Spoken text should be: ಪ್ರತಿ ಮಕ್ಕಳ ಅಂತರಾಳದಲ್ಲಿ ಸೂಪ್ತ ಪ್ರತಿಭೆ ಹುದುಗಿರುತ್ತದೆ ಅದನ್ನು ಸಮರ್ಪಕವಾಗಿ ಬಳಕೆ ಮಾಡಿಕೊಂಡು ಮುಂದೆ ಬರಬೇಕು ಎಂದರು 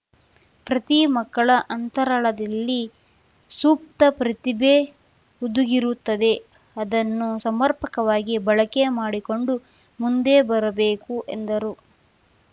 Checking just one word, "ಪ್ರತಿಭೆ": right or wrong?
right